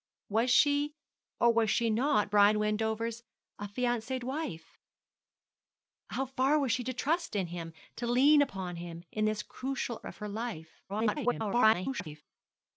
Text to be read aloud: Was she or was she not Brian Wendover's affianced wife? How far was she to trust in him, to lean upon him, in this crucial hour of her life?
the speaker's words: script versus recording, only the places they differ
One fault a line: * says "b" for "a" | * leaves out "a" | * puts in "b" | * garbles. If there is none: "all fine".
* leaves out "hour"
* garbles